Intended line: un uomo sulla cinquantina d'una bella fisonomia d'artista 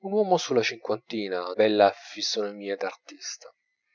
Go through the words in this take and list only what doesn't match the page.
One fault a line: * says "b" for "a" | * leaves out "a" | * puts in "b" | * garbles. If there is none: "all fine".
* leaves out "d'una"